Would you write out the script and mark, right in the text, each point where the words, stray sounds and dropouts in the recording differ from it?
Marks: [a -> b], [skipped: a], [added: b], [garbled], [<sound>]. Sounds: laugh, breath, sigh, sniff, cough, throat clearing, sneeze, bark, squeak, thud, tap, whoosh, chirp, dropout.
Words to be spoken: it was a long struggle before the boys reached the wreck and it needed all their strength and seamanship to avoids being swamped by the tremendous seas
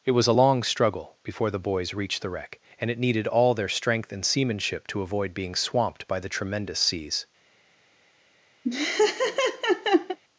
it was a long struggle before the boys reached the wreck and it needed all their strength and seamanship to [avoids -> avoid] being swamped by the tremendous seas [laugh]